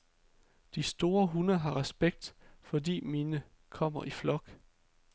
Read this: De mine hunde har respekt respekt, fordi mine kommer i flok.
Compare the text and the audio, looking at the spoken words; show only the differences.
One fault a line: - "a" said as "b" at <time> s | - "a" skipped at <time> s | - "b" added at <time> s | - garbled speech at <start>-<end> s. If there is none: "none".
- "mine" said as "store" at 0.8 s
- "respekt" skipped at 2.3 s